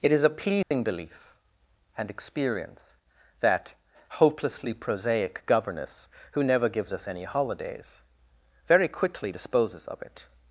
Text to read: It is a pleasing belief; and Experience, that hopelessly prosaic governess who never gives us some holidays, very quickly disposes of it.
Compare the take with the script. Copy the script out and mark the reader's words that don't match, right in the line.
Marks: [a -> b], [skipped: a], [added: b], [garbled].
It is a pleasing belief; and Experience, that hopelessly prosaic governess who never gives us [some -> any] holidays, very quickly disposes of it.